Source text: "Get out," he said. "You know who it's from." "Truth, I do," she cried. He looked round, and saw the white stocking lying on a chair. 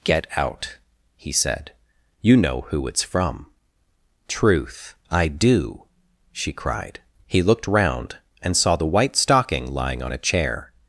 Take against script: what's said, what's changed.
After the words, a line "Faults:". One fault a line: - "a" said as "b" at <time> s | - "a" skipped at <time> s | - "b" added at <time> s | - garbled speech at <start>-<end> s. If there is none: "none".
"Get out," he said. "You know who it's from." "Truth, I do," she cried. He looked round, and saw the white stocking lying on a chair.
Faults:
none